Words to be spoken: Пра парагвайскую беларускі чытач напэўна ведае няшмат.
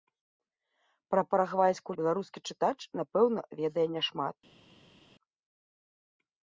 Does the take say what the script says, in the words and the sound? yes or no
yes